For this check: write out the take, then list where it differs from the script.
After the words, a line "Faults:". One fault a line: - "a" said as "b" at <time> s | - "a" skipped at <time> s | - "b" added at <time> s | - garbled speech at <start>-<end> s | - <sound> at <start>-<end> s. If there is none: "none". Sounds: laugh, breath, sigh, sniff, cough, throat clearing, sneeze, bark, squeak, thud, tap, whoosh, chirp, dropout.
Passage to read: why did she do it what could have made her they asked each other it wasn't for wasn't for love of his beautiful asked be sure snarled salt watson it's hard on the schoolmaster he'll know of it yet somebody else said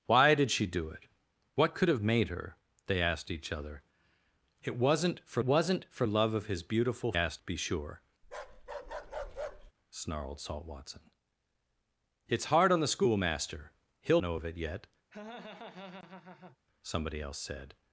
why did she do it what could have made her they asked each other it wasn't for wasn't for love of his beautiful asked be sure snarled salt watson it's hard on the schoolmaster he'll know of it yet somebody else said
Faults:
- bark at 8.2-9.7 s
- laugh at 15.1-16.6 s